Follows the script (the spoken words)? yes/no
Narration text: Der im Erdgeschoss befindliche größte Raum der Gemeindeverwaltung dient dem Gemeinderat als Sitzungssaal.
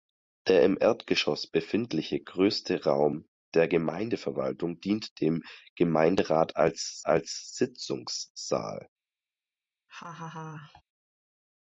no